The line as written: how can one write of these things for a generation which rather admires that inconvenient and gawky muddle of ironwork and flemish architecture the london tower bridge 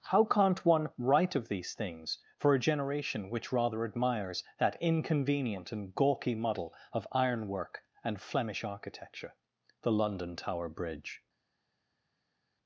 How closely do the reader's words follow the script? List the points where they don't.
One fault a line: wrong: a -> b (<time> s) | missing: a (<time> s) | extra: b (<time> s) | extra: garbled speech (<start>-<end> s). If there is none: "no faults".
wrong: can -> can't (0.2 s)